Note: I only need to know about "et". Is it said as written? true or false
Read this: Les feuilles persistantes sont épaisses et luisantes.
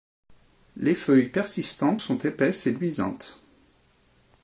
true